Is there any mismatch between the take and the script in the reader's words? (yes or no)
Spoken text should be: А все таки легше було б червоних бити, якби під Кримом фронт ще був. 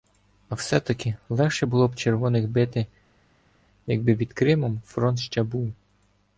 no